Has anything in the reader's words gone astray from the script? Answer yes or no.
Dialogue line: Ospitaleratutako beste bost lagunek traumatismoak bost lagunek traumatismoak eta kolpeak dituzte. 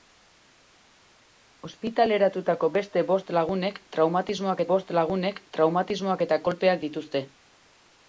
no